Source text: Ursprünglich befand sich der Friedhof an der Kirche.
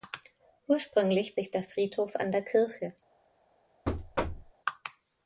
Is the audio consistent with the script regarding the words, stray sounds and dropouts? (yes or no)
no